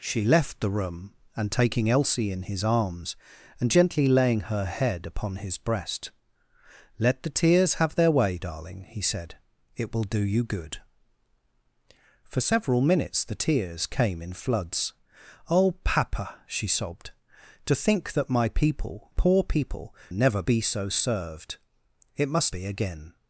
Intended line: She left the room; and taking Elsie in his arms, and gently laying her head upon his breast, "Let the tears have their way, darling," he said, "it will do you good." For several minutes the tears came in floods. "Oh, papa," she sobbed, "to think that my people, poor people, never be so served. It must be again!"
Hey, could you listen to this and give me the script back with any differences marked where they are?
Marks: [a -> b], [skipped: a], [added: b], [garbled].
She left the room; and taking Elsie in his arms, and gently laying her head upon his breast, "Let the tears have their way, darling," he said, "it will do you good." For several minutes the tears came in floods. "Oh, papa," she sobbed, "to think that my people, poor people, never be so served. It must be again!"